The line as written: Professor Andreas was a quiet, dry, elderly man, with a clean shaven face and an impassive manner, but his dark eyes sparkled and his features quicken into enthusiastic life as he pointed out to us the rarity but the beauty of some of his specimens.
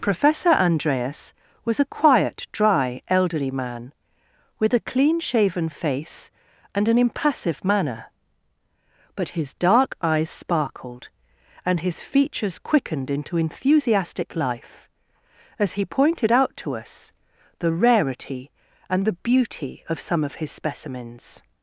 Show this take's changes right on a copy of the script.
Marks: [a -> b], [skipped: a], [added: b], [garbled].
Professor Andreas was a quiet, dry, elderly man, with a clean shaven face and an impassive manner, but his dark eyes sparkled and his features [quicken -> quickened] into enthusiastic life as he pointed out to us the rarity [but -> and] the beauty of some of his specimens.